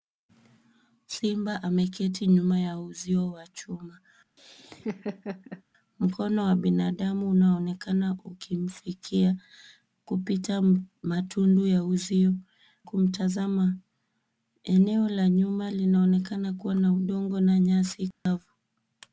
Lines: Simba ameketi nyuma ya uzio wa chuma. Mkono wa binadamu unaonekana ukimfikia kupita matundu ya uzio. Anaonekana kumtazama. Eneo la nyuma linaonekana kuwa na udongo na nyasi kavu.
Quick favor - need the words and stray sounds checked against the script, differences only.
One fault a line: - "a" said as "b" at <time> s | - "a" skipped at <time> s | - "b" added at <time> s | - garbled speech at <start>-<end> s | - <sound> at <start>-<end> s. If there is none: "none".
- laugh at 4.4-5.6 s
- "Anaonekana" skipped at 12.3 s
- dropout at 18.1-18.3 s